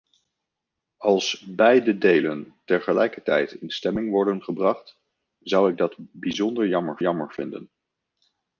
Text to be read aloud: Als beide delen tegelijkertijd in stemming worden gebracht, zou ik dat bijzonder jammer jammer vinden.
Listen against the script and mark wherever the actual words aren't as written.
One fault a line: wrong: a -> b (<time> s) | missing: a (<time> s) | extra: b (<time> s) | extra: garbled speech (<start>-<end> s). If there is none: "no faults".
no faults